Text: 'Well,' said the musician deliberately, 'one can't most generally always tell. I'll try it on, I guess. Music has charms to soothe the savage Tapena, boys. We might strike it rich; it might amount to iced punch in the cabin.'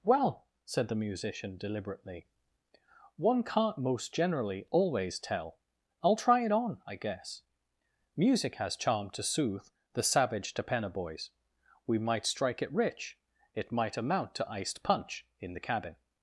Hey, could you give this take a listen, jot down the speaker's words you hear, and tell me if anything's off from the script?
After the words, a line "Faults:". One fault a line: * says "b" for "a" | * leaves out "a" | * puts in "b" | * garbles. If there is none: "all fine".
'Well,' said the musician deliberately, 'one can't most generally always tell. I'll try it on, I guess. Music has charm to soothe the savage Tapena, boys. We might strike it rich; it might amount to iced punch in the cabin.'
Faults:
* says "charm" for "charms"